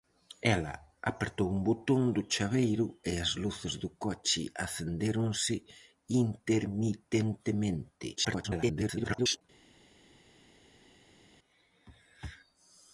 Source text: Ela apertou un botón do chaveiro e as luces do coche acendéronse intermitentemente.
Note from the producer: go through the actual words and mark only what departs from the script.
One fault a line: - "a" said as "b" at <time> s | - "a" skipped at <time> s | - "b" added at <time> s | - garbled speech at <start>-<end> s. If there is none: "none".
- garbled speech at 8.2-9.4 s